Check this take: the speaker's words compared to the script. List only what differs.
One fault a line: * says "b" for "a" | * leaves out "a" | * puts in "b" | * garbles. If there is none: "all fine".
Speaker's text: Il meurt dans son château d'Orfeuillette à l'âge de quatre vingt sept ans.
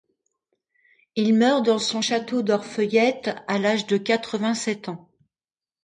all fine